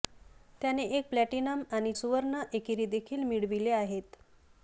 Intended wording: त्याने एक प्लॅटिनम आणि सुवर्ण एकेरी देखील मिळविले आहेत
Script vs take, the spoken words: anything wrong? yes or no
no